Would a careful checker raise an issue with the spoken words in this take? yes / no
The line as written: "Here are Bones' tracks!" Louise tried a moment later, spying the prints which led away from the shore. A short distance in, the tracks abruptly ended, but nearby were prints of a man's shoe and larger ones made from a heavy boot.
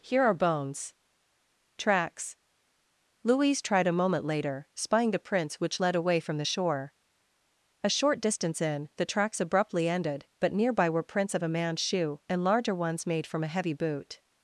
no